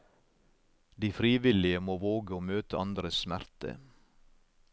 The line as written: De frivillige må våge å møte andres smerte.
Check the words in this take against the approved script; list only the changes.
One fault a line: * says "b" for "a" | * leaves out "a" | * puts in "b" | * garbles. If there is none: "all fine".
all fine